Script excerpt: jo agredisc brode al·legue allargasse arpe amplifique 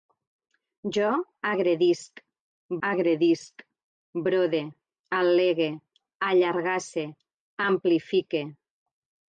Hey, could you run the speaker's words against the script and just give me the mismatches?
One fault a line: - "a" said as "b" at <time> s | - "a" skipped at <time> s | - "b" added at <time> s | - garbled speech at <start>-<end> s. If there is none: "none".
- "agredisc" added at 2.9 s
- "arpe" skipped at 7.1 s